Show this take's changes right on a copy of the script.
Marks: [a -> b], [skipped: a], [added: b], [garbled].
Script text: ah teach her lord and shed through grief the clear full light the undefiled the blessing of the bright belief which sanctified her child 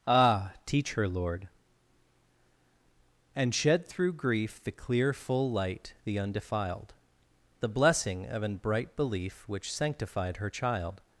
ah teach her lord and shed through grief the clear full light the undefiled the blessing of [the -> an] bright belief which sanctified her child